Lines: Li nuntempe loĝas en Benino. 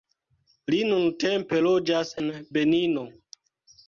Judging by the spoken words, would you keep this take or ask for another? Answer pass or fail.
pass